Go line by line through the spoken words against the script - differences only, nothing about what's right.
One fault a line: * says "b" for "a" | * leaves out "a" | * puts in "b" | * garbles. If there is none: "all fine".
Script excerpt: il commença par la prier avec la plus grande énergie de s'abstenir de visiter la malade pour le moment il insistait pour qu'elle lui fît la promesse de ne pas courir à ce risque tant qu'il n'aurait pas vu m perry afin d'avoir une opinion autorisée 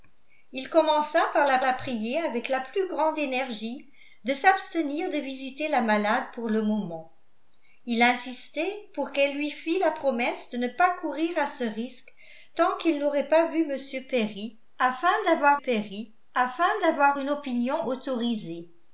* puts in "la"
* puts in "perry afin d'avoir"